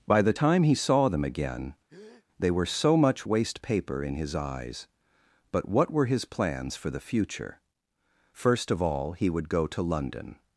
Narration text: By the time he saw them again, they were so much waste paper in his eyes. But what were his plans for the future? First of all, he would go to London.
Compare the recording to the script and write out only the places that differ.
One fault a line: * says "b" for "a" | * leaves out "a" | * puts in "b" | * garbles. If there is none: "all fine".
all fine